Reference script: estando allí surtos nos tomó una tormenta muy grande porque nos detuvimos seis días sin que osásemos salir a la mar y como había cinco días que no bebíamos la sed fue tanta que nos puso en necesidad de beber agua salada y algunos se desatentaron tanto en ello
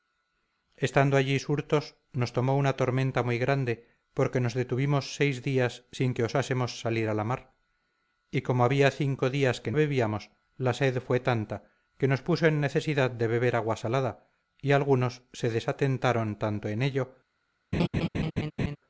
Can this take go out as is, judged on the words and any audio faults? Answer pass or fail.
fail